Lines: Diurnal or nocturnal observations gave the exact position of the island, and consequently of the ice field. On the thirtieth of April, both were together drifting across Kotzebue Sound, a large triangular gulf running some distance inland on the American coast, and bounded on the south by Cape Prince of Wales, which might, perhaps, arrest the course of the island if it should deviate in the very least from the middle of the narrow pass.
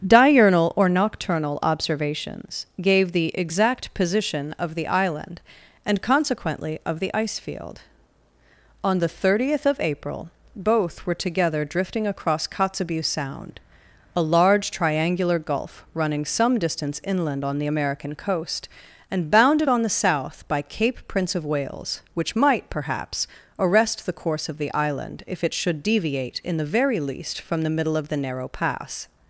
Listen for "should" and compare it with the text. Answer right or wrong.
right